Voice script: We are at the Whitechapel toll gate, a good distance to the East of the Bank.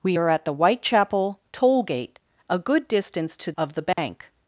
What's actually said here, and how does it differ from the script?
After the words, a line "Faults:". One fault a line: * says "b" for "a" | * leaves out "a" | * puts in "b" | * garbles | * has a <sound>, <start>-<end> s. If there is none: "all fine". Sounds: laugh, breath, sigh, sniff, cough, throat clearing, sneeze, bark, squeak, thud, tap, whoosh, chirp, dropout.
We are at the Whitechapel toll gate, a good distance to of the Bank.
Faults:
* leaves out "the East"
* has a dropout, 3.9-4.0 s